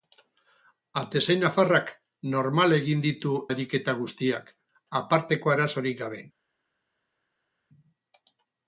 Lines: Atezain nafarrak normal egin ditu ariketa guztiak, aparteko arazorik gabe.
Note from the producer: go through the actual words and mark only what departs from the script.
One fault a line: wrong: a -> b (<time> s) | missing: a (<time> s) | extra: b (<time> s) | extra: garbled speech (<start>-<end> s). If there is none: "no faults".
no faults